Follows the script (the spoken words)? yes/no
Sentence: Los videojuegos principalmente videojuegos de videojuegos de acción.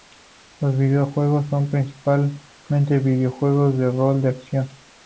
no